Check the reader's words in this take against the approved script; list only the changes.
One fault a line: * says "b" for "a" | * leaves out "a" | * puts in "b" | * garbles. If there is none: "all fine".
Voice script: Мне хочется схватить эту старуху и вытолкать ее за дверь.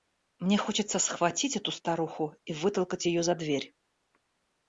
all fine